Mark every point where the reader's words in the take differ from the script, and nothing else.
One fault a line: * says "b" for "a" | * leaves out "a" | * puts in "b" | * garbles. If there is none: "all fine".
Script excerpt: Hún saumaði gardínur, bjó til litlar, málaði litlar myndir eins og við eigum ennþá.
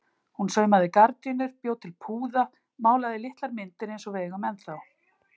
* says "púða" for "litlar"